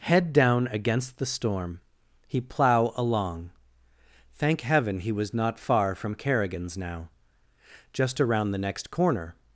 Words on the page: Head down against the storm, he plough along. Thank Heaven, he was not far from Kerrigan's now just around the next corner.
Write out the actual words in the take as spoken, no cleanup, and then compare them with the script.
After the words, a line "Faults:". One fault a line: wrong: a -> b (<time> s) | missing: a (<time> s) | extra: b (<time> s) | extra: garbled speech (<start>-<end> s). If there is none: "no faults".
Head down against the storm, he plough along. Thank Heaven, he was not far from Kerrigan's now just around the next corner.
Faults:
no faults